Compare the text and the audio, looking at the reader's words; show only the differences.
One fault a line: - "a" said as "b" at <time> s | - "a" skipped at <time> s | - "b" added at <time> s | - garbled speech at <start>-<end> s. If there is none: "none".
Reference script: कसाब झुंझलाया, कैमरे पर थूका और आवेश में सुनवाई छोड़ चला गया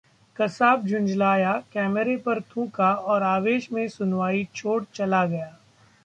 none